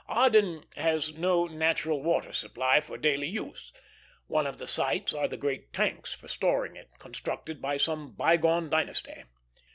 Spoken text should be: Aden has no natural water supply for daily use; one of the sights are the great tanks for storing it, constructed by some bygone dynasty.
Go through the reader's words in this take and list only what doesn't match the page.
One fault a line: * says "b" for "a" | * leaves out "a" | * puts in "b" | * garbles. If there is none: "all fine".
all fine